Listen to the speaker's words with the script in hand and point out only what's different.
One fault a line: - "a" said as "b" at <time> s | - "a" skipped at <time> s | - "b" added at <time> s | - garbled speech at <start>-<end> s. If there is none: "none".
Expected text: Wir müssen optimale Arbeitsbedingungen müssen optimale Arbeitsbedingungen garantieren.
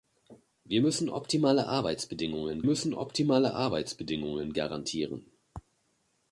none